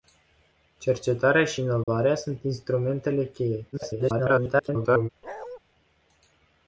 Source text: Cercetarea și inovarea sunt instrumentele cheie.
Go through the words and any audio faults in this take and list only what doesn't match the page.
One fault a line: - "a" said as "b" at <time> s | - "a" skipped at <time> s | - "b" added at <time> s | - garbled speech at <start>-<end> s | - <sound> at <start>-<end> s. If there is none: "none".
- dropout at 1.8-1.9 s
- garbled speech at 3.7-5.1 s
- bark at 5.2-5.6 s